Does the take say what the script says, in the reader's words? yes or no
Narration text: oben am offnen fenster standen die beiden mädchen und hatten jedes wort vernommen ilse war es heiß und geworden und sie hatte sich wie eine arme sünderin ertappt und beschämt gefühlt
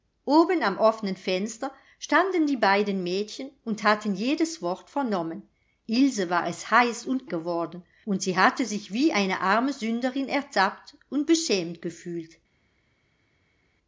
yes